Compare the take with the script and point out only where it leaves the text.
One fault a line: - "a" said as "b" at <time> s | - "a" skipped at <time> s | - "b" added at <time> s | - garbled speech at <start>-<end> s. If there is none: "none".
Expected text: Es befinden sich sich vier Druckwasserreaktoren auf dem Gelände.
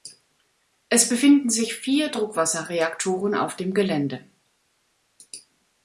- "sich" skipped at 1.7 s